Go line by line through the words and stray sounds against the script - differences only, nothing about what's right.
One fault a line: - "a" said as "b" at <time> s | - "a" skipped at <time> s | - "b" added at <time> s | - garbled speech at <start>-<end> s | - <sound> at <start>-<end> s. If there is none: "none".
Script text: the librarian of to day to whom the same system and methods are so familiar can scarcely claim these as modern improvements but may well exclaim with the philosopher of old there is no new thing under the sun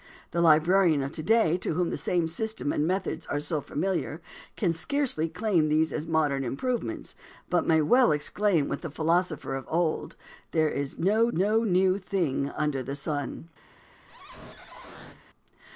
- "no" added at 11.3 s
- squeak at 14.1-15.2 s